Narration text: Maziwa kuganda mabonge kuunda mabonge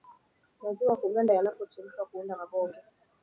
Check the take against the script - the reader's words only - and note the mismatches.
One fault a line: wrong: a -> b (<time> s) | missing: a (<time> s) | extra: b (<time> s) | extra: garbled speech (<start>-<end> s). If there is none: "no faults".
wrong: mabonge -> yanapochemshwa (1.3 s)